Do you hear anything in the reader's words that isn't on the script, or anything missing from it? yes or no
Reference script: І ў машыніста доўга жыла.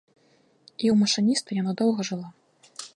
yes